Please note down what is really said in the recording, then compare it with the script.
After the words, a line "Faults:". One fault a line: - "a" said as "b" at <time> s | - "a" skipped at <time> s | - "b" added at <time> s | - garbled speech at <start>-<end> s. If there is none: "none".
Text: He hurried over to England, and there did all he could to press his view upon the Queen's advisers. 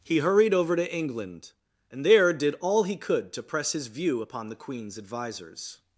He hurried over to England, and there did all he could to press his view upon the Queen's advisers.
Faults:
none